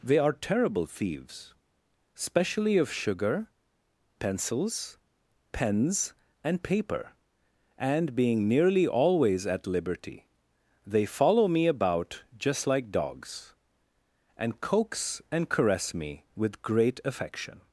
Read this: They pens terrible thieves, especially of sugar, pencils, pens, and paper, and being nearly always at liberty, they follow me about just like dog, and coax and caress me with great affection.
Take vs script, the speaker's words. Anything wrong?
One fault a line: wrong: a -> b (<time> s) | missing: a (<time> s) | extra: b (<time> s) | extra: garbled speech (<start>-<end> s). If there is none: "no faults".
wrong: pens -> are (0.2 s)
wrong: dog -> dogs (12.9 s)